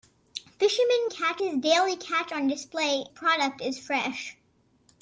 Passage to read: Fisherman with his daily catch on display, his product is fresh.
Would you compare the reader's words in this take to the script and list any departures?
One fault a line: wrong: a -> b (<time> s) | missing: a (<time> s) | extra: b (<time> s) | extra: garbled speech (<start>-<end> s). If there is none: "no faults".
wrong: with -> catch (1.1 s)
missing: his (3.0 s)